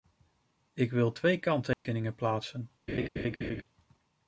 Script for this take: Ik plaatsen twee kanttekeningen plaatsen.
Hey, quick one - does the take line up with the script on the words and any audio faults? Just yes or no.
no